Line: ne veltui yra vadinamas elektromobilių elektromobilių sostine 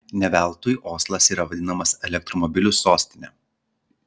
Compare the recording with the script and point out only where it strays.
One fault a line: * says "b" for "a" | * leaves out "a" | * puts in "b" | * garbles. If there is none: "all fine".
* puts in "oslas"
* leaves out "elektromobilių"